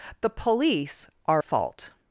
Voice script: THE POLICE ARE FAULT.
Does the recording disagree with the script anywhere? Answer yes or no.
no